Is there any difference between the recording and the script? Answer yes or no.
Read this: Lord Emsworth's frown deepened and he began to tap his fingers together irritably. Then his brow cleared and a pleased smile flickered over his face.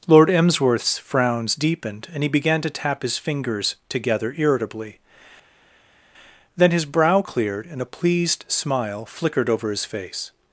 yes